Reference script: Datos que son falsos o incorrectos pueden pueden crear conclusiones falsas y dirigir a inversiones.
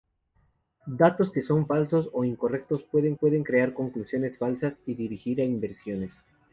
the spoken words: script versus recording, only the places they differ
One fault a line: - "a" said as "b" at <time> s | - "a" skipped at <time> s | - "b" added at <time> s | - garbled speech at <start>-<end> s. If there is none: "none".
none